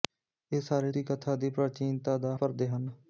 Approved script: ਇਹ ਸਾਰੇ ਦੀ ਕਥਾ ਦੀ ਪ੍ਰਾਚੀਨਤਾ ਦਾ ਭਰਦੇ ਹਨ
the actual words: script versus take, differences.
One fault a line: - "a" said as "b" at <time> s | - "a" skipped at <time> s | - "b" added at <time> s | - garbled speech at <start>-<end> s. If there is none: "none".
none